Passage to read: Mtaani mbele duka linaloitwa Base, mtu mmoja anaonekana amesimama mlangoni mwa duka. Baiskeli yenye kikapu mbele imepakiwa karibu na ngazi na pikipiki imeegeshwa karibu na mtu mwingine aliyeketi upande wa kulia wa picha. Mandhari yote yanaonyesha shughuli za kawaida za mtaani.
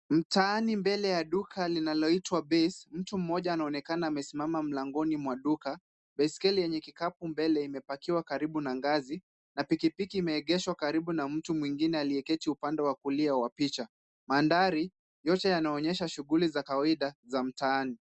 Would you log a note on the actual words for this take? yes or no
yes